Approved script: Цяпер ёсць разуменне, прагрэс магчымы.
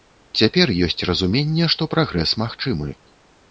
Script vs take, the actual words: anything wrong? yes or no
yes